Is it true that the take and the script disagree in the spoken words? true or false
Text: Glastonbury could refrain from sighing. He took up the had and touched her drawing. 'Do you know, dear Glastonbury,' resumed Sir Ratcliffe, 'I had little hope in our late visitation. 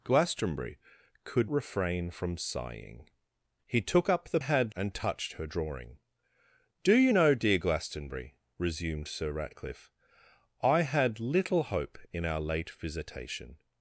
false